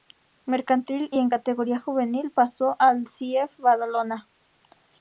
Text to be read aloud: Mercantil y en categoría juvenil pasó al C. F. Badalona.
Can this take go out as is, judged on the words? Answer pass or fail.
pass